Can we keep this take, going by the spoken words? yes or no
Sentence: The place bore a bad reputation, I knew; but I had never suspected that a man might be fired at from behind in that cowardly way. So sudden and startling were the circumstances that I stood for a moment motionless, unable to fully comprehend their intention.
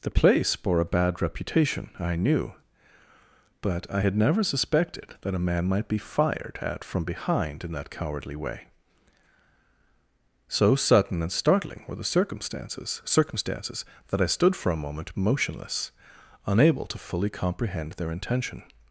no